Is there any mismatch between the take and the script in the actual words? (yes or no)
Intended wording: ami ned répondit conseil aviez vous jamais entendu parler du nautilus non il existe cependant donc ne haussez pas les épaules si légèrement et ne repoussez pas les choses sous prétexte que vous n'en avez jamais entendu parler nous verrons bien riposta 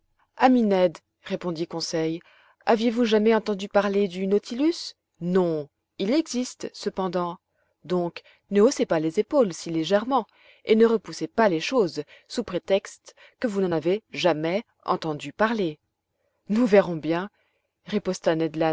no